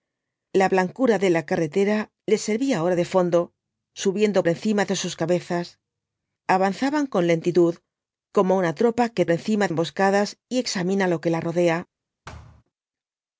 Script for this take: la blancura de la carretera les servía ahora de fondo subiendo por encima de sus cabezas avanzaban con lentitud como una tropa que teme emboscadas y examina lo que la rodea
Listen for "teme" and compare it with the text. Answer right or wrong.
wrong